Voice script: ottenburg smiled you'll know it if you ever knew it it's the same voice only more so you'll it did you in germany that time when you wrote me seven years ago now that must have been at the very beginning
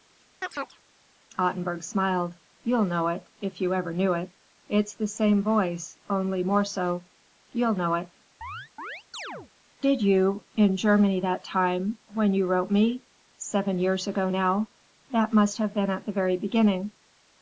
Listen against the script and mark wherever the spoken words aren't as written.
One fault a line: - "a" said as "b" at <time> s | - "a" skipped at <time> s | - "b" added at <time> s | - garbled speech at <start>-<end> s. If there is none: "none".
- "know" added at 7.7 s